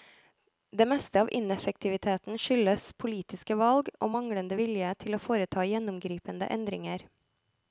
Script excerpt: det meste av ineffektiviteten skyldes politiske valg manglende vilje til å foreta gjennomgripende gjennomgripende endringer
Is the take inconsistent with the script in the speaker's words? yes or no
yes